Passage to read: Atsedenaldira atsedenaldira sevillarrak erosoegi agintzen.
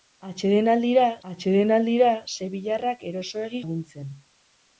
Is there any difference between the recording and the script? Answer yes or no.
no